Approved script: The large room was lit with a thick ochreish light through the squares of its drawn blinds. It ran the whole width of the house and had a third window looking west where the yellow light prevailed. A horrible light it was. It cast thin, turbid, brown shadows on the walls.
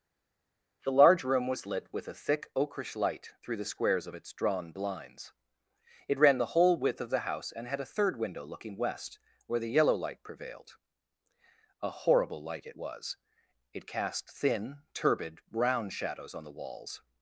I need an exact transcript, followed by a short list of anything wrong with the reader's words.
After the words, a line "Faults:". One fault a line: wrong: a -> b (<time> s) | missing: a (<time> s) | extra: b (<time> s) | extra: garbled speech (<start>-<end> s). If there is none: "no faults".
The large room was lit with a thick ochreish light through the squares of its drawn blinds. It ran the whole width of the house and had a third window looking west where the yellow light prevailed. A horrible light it was. It cast thin, turbid, brown shadows on the walls.
Faults:
no faults